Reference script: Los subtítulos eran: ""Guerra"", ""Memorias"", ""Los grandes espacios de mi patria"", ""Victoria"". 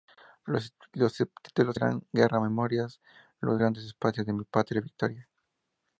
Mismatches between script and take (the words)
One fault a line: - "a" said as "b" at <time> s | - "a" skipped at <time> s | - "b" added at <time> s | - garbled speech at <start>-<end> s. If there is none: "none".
none